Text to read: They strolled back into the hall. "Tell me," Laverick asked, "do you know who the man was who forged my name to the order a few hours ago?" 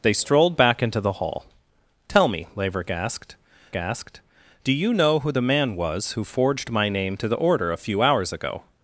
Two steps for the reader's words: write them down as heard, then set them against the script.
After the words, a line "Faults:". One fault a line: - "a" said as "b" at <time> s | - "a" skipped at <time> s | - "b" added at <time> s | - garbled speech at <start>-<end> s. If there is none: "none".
They strolled back into the hall. "Tell me," Laverick asked asked, "do you know who the man was who forged my name to the order a few hours ago?"
Faults:
- "asked" added at 3.7 s